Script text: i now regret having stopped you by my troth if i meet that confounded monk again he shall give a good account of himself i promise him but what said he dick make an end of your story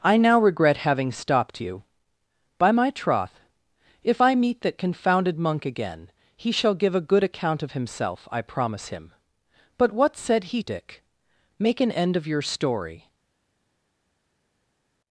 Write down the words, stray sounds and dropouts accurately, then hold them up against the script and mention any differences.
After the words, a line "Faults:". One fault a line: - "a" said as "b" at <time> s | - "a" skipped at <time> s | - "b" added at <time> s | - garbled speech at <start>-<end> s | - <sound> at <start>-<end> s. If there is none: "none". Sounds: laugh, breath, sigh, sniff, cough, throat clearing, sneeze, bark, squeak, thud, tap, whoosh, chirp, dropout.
i now regret having stopped you by my troth if i meet that confounded monk again he shall give a good account of himself i promise him but what said he dick make an end of your story
Faults:
none